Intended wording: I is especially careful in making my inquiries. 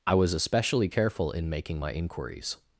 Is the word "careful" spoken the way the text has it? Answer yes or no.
yes